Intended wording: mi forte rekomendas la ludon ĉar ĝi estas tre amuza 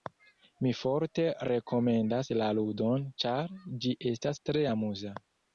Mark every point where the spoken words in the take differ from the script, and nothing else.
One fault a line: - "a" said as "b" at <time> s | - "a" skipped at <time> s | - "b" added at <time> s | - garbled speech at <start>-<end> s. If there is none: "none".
none